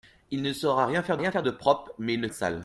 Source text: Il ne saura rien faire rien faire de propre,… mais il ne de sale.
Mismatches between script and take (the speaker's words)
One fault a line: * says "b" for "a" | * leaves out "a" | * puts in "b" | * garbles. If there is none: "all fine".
all fine